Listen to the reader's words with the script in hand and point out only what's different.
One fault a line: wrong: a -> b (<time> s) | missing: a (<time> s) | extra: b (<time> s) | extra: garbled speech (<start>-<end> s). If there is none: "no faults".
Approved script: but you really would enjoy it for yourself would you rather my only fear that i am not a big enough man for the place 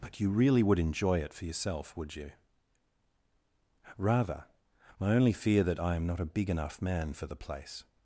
no faults